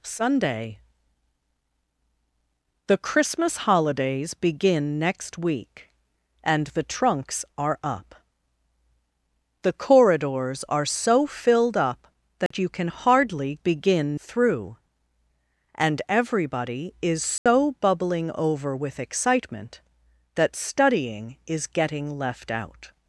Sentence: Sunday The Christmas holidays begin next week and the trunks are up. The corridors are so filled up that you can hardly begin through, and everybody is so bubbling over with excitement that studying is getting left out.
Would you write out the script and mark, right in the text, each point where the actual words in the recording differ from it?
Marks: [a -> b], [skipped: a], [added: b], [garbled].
Sunday The Christmas holidays begin next week and the trunks are up. The corridors are so filled up that you can hardly begin through, and everybody is so bubbling over with excitement that studying is getting left out.